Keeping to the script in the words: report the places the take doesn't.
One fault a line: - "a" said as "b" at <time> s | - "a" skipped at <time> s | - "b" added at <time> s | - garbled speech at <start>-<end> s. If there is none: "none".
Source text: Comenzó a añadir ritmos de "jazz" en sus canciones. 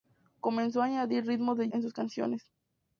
- "jazz" skipped at 1.7 s